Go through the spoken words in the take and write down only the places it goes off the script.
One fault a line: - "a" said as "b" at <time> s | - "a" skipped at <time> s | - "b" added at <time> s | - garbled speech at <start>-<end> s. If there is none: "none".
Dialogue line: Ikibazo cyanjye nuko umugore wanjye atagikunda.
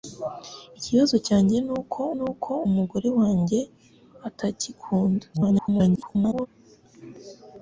- "nuko" added at 2.2 s
- garbled speech at 5.3-6.5 s